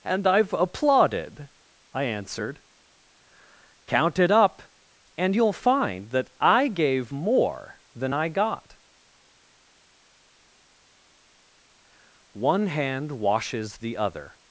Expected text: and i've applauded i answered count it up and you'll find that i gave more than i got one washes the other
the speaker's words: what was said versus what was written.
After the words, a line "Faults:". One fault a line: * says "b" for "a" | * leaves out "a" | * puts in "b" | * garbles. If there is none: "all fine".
and i've applauded i answered count it up and you'll find that i gave more than i got one hand washes the other
Faults:
* puts in "hand"